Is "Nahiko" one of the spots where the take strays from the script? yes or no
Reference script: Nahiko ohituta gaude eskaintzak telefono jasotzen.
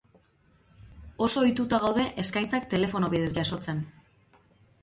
yes